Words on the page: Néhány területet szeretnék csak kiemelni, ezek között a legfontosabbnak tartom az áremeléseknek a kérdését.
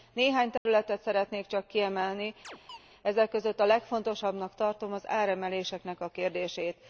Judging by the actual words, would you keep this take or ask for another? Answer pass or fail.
pass